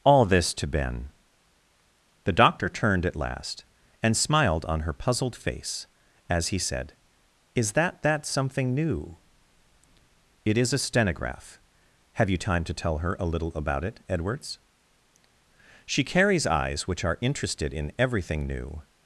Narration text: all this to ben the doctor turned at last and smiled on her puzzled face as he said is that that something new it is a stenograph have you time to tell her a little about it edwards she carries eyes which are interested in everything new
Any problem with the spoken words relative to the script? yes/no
no